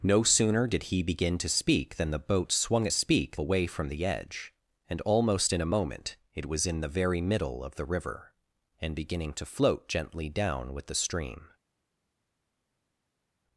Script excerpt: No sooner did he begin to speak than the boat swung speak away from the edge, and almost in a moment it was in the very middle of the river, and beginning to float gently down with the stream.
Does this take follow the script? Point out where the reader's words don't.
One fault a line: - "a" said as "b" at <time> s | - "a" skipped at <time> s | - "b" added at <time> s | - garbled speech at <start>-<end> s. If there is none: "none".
none